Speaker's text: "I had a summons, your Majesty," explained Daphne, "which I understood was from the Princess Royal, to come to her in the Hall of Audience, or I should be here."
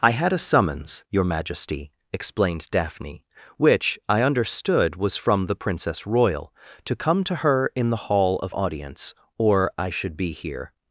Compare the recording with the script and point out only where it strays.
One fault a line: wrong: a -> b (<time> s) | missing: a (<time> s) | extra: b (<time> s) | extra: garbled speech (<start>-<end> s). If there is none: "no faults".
no faults